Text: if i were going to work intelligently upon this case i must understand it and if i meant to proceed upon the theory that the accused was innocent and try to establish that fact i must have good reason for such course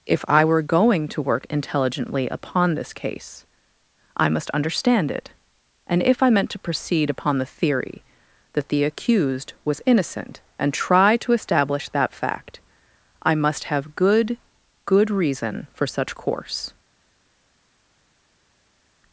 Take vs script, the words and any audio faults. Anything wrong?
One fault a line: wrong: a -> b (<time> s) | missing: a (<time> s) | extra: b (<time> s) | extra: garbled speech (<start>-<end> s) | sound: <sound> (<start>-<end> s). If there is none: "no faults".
extra: good (14.8 s)